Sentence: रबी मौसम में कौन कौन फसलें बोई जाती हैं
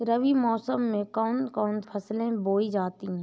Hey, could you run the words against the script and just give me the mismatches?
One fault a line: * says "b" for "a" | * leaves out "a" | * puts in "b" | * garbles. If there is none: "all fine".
all fine